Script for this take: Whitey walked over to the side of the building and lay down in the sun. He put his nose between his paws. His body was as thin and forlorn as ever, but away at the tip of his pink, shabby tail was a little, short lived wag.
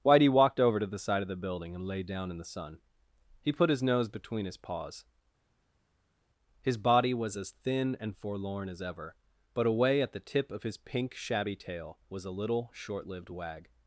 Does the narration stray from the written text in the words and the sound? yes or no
no